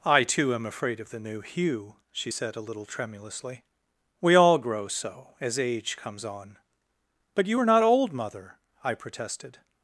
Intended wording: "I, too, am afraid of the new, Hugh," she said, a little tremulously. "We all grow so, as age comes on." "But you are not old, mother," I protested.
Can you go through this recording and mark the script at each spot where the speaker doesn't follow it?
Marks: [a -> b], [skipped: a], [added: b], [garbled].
"I, too, am afraid of the new, Hugh," she said, a little tremulously. "We all grow so, as age comes on." "But you are not old, mother," I protested.